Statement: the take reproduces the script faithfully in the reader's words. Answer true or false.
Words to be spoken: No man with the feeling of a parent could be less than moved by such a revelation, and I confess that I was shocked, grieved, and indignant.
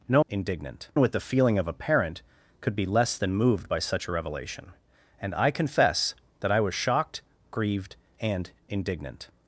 false